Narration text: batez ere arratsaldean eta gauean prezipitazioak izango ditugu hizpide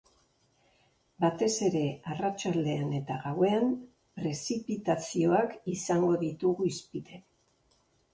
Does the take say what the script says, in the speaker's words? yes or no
yes